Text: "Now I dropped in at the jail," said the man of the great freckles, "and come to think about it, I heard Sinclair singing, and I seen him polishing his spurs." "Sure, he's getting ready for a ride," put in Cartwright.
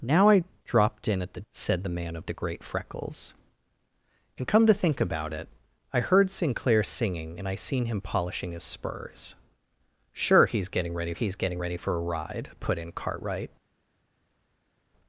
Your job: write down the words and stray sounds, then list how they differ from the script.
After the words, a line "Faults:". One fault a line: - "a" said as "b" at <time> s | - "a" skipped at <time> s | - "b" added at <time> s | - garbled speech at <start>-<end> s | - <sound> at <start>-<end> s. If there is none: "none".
"Now I dropped in at the," said the man of the great freckles, "and come to think about it, I heard Sinclair singing, and I seen him polishing his spurs." "Sure, he's getting ready he's getting ready for a ride," put in Cartwright.
Faults:
- "jail" skipped at 1.4 s
- "he's getting ready" added at 11.1 s